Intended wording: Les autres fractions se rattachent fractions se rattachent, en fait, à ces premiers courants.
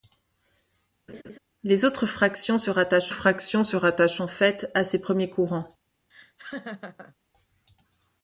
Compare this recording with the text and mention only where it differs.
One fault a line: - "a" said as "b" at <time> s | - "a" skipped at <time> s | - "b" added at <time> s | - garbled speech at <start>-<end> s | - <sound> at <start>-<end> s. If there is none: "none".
- laugh at 1.1-1.4 s
- laugh at 6.1-7.1 s